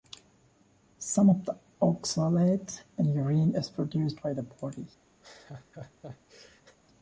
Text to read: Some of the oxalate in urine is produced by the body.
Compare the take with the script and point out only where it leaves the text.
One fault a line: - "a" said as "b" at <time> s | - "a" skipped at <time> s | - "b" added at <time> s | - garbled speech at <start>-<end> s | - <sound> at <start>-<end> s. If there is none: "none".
- laugh at 5.2-6.8 s